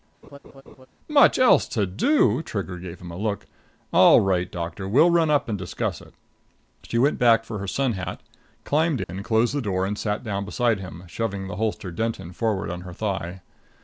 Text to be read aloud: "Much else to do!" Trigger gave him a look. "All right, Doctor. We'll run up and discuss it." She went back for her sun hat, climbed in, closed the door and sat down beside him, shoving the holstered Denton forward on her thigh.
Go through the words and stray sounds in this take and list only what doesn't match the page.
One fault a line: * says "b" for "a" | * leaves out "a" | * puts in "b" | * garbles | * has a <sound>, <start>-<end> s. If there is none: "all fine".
* has a laugh, 0.2-0.9 s
* has a dropout, 9.0-9.1 s